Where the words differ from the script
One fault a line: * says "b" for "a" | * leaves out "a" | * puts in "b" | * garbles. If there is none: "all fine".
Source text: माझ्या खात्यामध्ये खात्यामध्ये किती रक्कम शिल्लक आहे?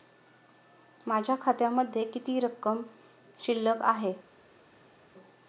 * leaves out "खात्यामध्ये"